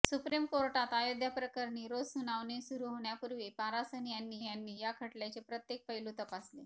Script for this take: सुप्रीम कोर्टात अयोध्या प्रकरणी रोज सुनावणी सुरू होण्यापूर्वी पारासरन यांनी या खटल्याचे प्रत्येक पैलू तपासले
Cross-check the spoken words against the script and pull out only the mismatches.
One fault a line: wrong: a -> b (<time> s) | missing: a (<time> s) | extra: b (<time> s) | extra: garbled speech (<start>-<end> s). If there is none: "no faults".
extra: यांनी (4.4 s)